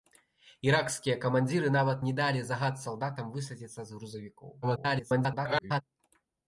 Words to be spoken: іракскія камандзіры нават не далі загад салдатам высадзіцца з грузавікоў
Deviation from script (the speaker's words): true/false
true